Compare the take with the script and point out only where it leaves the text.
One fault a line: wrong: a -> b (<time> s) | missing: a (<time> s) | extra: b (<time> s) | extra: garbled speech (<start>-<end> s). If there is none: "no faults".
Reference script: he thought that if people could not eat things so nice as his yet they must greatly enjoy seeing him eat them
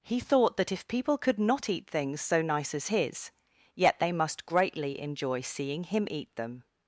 no faults